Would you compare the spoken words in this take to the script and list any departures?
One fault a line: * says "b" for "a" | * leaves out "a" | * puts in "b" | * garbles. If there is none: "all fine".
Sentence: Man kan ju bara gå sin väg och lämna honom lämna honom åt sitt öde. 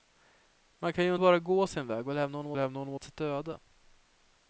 all fine